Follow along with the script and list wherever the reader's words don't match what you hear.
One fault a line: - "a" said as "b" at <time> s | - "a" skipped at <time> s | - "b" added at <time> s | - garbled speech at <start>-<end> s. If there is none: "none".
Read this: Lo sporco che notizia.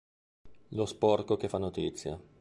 - "fa" added at 1.4 s